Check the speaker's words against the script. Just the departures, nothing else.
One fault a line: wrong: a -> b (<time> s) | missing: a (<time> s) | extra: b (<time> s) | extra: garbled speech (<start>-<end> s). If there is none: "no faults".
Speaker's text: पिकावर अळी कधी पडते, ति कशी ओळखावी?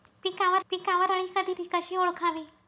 extra: पिकावर (0.7 s)
missing: पडते (1.5 s)